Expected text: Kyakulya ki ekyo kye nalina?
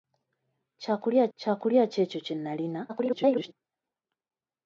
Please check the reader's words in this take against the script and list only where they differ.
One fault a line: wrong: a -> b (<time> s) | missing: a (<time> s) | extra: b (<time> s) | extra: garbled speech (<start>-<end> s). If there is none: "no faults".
extra: kyakulya (1.4 s)
extra: garbled speech (2.9-3.5 s)